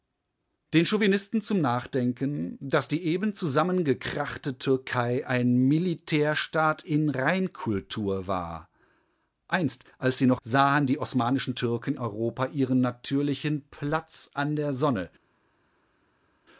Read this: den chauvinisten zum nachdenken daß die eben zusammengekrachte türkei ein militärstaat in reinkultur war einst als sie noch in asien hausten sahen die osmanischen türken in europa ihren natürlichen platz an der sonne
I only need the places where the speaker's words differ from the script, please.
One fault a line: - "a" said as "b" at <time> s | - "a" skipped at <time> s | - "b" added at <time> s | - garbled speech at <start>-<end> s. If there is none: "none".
- "in asien hausten" skipped at 10.4 s
- "in" skipped at 11.9 s